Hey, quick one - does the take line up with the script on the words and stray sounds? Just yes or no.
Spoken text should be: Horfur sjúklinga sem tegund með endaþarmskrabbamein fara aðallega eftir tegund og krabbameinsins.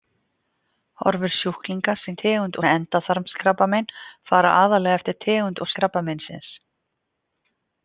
yes